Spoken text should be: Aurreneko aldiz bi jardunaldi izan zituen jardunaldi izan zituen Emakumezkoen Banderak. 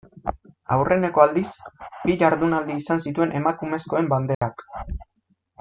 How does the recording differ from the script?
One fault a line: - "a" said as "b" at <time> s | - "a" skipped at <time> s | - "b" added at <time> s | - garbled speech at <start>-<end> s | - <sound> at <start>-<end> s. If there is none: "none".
- "jardunaldi izan zituen" skipped at 3.3 s
- dropout at 4.3-4.4 s